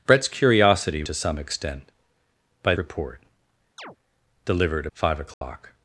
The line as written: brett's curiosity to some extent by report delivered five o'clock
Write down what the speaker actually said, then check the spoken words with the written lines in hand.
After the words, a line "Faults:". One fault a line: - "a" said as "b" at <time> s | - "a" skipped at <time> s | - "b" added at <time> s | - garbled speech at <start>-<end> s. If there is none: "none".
brett's curiosity to some extent by report delivered five o'clock
Faults:
none